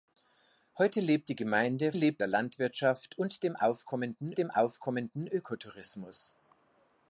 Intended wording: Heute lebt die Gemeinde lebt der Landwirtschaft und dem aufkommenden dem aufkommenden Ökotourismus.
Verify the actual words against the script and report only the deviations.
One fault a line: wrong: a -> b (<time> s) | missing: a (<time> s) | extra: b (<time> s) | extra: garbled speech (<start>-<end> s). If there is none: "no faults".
no faults